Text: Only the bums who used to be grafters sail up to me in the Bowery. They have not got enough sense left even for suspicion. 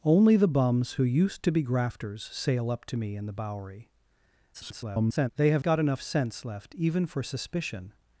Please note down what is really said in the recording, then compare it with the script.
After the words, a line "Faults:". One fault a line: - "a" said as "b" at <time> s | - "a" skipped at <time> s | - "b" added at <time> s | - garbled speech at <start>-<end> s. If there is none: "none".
Only the bums who used to be grafters sail up to me in the Bowery. [garbled] They have got enough sense left even for suspicion.
Faults:
- garbled speech at 4.5-5.3 s
- "not" skipped at 5.6 s